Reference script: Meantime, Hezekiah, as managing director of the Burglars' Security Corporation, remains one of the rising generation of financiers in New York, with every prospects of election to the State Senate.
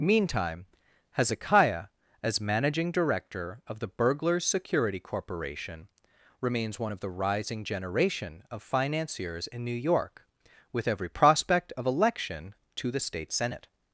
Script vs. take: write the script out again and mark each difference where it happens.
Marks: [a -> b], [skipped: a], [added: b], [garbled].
Meantime, Hezekiah, as managing director of the Burglars' Security Corporation, remains one of the rising generation of financiers in New York, with every [prospects -> prospect] of election to the State Senate.